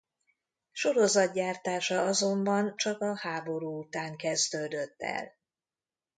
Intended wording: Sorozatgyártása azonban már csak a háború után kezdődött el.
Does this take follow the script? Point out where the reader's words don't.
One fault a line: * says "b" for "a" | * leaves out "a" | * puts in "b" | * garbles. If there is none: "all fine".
* leaves out "már"